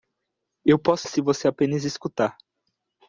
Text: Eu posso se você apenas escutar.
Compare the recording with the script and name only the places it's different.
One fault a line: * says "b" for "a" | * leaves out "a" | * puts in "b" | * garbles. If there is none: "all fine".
all fine